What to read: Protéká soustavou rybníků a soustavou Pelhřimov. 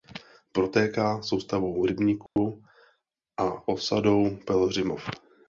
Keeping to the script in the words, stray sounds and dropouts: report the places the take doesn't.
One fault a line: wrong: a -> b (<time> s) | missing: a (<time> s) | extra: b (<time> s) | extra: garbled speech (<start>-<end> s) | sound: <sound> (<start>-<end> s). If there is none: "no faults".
sound: dropout (2.3-2.4 s)
wrong: soustavou -> osadou (3.7 s)